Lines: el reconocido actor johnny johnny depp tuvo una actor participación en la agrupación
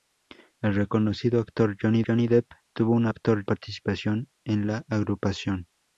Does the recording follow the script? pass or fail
pass